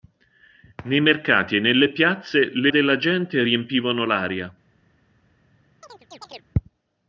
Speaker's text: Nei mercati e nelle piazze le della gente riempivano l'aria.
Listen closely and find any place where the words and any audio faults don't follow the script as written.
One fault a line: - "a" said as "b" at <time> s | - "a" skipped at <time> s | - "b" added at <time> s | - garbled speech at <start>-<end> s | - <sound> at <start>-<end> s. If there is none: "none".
- chirp at 5.8-6.5 s